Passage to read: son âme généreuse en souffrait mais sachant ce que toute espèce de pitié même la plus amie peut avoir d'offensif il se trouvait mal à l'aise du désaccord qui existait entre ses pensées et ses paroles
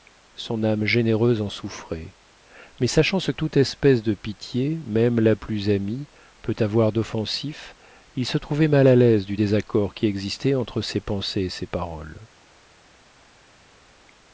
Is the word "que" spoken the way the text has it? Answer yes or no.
no